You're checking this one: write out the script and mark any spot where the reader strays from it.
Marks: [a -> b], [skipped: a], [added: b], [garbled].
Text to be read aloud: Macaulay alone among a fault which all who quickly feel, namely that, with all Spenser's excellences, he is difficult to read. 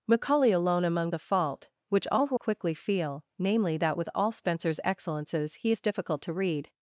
Macaulay alone among a fault which all who quickly feel, namely that, with all Spenser's excellences, he is difficult to read.